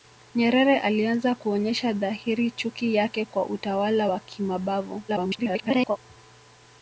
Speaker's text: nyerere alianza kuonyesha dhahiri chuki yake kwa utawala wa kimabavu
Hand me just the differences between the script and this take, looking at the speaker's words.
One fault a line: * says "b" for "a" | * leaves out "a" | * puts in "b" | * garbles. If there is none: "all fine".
* garbles